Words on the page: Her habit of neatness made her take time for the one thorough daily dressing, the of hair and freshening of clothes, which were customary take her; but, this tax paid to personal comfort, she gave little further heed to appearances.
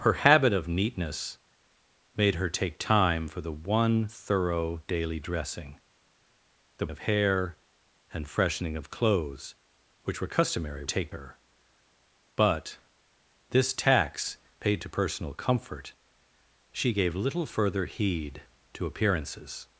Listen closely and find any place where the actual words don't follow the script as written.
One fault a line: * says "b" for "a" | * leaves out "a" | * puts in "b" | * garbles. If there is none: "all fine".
all fine